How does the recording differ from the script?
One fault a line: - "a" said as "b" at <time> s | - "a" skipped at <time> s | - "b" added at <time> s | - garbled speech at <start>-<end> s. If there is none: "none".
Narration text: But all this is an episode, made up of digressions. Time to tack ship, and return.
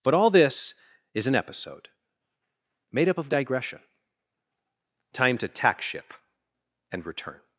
- "digressions" said as "digression" at 3.3 s